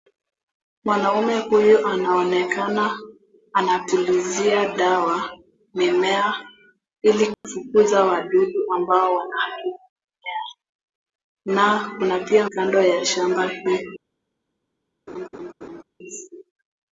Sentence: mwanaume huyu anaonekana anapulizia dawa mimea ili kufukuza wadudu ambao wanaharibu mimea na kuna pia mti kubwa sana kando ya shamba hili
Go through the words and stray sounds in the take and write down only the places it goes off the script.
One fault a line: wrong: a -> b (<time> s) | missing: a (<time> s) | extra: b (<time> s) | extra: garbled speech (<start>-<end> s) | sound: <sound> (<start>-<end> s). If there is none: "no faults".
sound: dropout (7.3-7.4 s)
missing: mti kubwa sana (12.5 s)
sound: laugh (15.1-15.8 s)